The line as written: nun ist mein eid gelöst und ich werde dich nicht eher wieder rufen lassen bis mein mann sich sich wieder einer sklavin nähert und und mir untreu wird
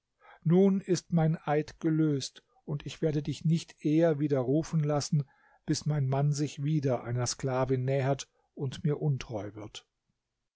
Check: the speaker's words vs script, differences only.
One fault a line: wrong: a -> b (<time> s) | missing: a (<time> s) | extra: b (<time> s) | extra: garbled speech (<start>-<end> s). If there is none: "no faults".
missing: sich (6.6 s)
missing: und (8.8 s)